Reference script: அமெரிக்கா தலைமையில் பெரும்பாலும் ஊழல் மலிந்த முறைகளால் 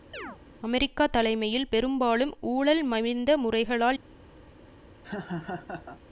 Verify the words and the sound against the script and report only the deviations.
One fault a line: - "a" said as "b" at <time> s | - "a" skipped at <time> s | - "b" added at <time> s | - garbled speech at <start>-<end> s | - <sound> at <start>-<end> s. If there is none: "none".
- chirp at 0.1-0.4 s
- laugh at 5.0-6.0 s